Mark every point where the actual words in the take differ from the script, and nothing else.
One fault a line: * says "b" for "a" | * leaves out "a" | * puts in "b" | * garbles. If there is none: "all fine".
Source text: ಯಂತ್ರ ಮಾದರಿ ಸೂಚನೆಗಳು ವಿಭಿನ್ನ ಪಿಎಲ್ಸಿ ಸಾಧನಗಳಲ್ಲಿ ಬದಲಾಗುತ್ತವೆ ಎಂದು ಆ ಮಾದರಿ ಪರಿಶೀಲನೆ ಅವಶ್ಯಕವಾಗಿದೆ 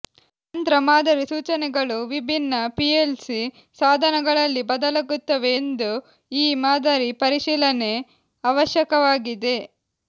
* says "ಈ" for "ಆ"